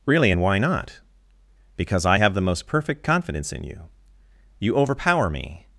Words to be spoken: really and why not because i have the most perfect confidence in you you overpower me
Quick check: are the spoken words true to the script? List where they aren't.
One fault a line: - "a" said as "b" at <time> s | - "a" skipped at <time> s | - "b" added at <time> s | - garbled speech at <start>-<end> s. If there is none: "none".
none